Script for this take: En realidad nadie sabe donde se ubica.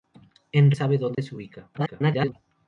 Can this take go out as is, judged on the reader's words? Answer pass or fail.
fail